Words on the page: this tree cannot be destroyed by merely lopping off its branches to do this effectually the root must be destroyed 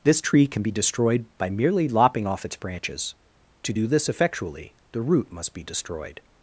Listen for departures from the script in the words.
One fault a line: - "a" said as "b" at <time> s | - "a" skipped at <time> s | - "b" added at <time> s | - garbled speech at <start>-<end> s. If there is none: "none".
- "cannot" said as "can" at 0.5 s